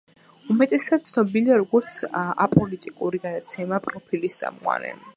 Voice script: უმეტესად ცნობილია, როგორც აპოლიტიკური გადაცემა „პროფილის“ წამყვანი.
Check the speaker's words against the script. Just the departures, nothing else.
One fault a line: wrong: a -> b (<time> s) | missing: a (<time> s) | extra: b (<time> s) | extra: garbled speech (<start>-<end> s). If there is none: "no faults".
no faults